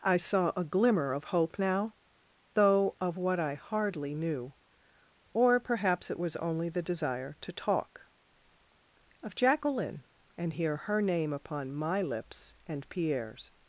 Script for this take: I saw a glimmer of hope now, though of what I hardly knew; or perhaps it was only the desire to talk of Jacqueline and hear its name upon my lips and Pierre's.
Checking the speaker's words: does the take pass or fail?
fail